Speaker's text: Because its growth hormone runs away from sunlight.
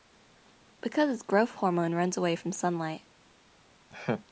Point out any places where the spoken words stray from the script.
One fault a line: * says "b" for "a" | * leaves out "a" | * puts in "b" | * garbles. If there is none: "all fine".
all fine